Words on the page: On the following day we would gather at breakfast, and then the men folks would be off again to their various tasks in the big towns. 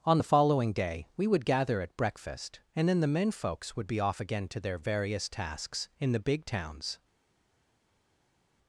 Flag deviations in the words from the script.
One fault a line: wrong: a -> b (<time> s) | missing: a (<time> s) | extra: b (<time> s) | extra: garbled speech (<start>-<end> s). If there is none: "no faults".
no faults